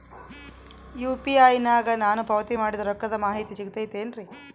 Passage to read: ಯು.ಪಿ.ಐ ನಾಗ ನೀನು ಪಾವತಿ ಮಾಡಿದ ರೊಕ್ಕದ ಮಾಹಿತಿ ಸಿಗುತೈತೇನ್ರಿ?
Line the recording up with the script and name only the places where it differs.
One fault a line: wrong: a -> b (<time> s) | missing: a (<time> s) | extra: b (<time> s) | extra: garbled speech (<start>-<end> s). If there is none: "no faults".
wrong: ನೀನು -> ನಾನು (2.0 s)